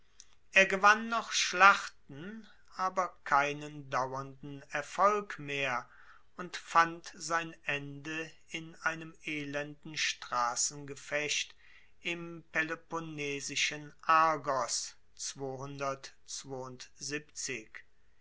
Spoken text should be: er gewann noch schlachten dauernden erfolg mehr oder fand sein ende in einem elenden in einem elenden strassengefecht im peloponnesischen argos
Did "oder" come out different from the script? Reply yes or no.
yes